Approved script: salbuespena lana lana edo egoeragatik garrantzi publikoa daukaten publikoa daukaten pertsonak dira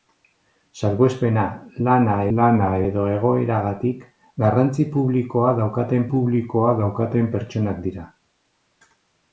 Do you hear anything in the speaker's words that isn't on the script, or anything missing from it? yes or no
no